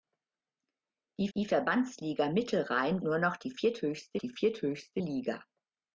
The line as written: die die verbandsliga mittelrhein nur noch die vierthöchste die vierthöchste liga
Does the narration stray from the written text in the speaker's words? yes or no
no